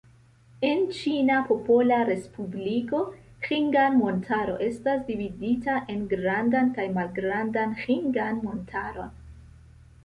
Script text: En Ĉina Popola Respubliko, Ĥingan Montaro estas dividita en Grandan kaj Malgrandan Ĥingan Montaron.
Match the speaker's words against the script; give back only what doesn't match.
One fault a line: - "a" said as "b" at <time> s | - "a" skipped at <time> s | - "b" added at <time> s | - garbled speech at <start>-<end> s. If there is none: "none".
none